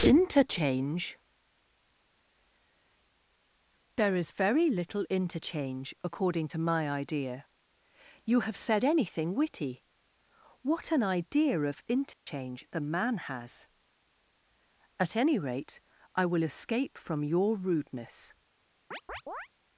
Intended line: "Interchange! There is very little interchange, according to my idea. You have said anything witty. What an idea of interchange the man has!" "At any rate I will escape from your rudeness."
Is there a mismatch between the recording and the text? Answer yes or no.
no